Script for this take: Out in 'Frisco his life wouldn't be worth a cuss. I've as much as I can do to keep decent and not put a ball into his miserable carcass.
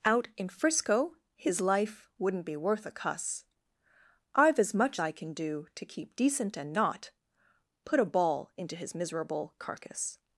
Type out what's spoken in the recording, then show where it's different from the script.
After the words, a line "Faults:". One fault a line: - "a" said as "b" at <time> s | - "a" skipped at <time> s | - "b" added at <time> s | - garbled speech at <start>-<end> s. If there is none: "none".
Out in 'Frisco his life wouldn't be worth a cuss. I've as much I can do to keep decent and not put a ball into his miserable carcass.
Faults:
- "as" skipped at 5.0 s